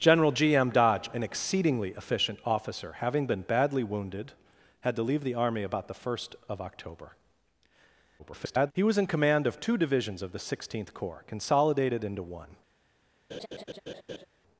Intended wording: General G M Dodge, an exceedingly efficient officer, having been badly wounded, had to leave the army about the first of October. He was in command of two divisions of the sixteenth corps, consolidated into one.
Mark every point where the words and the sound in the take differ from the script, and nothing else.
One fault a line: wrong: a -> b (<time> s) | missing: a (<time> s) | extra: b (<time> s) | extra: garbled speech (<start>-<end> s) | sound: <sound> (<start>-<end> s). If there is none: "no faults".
extra: garbled speech (8.2-8.7 s)
sound: laugh (13.3-14.3 s)